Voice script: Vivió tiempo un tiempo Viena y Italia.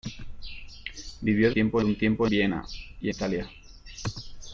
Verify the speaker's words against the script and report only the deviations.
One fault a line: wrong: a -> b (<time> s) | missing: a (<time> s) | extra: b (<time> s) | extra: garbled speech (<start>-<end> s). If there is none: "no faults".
no faults